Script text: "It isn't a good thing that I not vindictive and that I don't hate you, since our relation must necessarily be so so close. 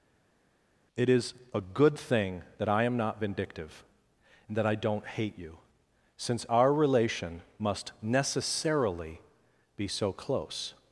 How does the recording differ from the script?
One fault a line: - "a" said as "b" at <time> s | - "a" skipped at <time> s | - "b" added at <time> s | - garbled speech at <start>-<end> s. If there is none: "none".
- "isn't" said as "is" at 1.1 s
- "am" added at 2.8 s
- "so" skipped at 10.1 s